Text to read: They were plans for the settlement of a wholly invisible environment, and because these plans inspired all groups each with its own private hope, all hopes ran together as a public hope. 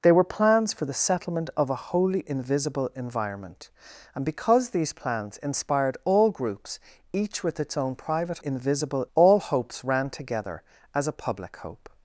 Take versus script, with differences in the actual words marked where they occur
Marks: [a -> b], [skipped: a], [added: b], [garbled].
They were plans for the settlement of a wholly invisible environment, and because these plans inspired all groups each with its own private [hope, -> invisible] all hopes ran together as a public hope.